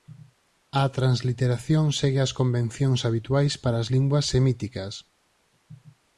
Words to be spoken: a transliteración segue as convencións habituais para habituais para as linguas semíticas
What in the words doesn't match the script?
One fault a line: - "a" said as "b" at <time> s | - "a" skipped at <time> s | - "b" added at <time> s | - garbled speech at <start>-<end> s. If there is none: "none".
- "habituais para" skipped at 3.8 s